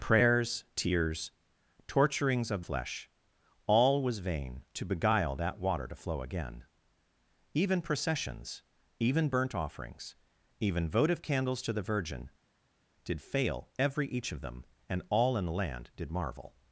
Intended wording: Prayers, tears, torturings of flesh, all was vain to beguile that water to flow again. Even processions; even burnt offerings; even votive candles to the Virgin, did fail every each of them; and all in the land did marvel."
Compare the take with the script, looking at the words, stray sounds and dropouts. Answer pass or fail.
pass